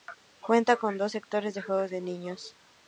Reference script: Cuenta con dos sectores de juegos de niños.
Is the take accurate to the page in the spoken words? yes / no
yes